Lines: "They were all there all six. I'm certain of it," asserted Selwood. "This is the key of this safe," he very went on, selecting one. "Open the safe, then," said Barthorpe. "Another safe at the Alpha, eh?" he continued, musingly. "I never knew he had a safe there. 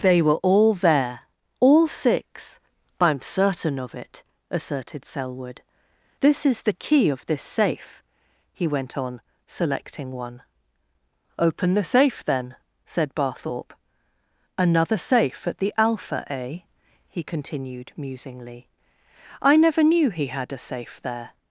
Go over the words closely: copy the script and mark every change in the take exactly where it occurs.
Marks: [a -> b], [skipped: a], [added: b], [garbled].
"They were all there all six. I'm certain of it," asserted Selwood. "This is the key of this safe," he [skipped: very] went on, selecting one. "Open the safe, then," said Barthorpe. "Another safe at the Alpha, eh?" he continued, musingly. "I never knew he had a safe there.